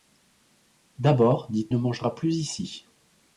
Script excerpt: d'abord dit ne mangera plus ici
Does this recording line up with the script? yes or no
yes